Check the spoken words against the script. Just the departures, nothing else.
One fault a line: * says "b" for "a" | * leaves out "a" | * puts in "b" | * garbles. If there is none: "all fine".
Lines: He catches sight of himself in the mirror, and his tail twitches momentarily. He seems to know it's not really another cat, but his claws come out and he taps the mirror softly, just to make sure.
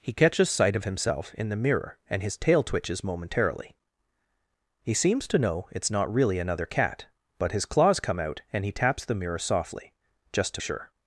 * leaves out "make"